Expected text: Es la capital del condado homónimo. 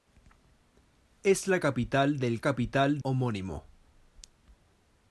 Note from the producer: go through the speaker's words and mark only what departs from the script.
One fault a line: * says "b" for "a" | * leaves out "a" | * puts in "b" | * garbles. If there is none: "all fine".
* says "capital" for "condado"